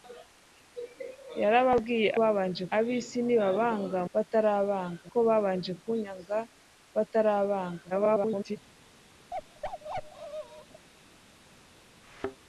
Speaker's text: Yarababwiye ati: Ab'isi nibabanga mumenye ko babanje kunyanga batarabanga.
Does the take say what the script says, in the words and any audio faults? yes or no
no